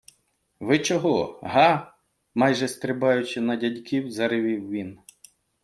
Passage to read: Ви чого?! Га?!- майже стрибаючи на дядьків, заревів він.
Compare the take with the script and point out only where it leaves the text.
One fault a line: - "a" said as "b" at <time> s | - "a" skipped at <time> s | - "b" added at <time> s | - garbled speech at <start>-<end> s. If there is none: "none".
none